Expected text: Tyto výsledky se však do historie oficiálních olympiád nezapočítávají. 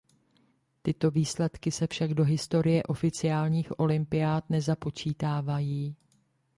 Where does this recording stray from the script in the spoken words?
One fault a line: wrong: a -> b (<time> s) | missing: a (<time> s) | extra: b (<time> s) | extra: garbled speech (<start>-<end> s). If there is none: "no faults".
no faults